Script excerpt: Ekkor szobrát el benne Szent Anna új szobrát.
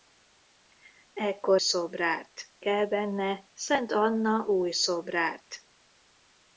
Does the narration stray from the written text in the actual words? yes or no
no